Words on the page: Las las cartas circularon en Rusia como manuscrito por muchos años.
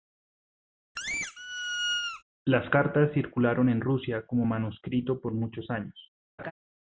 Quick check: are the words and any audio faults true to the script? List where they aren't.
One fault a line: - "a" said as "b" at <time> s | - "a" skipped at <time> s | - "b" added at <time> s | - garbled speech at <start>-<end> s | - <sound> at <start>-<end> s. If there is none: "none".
- squeak at 1.0-2.2 s
- "las" skipped at 2.7 s
- laugh at 6.4-6.5 s